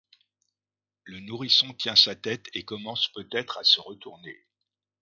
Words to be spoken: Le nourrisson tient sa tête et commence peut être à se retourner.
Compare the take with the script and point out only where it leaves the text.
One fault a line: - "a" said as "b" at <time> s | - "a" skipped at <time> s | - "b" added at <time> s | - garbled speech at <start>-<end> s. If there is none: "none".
none